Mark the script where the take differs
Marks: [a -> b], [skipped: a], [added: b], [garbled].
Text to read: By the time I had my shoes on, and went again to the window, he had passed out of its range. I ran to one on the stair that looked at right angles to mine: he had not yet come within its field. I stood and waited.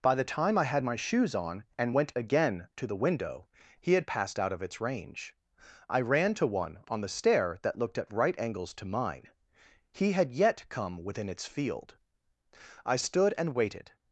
By the time I had my shoes on, and went again to the window, he had passed out of its range. I ran to one on the stair that looked at right angles to mine: he had [skipped: not] yet come within its field. I stood and waited.